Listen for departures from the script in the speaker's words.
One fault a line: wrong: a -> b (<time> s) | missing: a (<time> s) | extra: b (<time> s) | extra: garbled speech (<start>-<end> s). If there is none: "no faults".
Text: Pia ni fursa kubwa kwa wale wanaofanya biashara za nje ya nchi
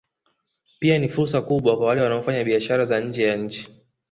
no faults